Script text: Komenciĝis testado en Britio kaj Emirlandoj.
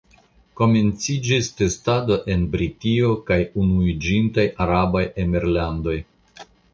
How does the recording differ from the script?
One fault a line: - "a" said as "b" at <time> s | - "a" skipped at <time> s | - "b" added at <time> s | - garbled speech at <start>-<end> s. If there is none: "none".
- "Unuiĝintaj Arabaj" added at 3.6 s